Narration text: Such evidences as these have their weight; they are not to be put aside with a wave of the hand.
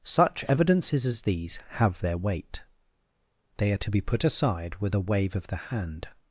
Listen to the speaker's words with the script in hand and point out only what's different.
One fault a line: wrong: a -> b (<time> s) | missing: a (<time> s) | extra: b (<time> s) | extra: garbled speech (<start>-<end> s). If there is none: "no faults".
missing: not (3.8 s)